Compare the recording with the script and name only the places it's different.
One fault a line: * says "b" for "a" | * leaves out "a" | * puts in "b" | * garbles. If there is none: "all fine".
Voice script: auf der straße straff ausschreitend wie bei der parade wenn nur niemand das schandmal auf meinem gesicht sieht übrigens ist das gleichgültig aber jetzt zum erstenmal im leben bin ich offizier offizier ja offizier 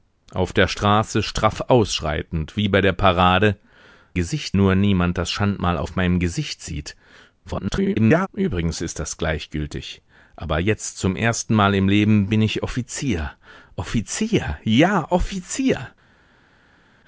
* says "gesicht" for "wenn"
* garbles